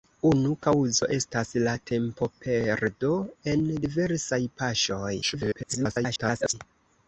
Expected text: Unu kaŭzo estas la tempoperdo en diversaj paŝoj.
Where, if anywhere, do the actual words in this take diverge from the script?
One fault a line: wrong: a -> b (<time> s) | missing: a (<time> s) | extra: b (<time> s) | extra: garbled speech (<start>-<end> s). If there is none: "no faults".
extra: garbled speech (5.2-6.5 s)